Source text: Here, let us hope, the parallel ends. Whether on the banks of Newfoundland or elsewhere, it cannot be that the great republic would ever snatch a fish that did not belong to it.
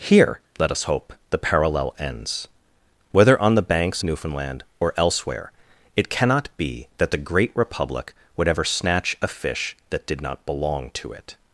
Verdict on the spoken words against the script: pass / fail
fail